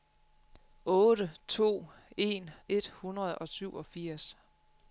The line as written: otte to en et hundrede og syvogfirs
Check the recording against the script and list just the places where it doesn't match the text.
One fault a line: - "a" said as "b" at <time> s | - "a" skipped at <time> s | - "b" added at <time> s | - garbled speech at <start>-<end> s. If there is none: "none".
none